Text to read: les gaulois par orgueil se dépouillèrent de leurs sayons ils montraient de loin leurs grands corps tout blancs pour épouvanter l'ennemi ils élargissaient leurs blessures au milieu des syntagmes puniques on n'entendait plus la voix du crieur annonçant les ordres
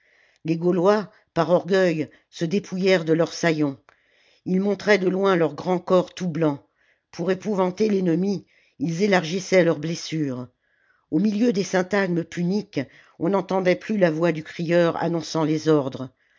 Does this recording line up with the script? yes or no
yes